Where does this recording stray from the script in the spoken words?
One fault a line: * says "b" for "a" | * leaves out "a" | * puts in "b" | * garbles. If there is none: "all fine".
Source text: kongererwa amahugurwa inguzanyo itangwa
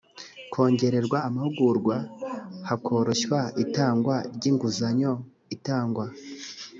* puts in "hakoroshywa itangwa ry"